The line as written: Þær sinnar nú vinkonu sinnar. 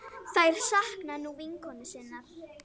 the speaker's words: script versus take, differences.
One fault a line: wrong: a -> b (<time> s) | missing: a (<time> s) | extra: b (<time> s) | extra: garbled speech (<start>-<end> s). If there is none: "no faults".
wrong: sinnar -> sakna (0.7 s)